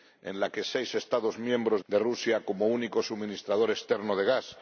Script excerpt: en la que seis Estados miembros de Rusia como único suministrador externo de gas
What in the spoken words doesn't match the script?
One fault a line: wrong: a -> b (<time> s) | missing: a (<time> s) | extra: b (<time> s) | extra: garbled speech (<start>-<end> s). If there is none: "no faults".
no faults